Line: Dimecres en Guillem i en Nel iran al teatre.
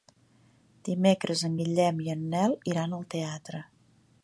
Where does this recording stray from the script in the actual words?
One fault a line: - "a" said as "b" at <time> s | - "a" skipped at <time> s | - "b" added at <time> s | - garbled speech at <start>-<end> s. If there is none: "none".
none